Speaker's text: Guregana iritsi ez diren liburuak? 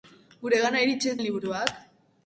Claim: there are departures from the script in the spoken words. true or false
true